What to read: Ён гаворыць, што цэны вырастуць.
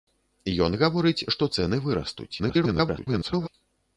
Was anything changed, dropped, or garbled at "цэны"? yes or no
no